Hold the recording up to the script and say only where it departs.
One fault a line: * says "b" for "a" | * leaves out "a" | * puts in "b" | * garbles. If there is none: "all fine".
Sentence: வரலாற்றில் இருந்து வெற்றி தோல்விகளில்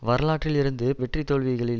all fine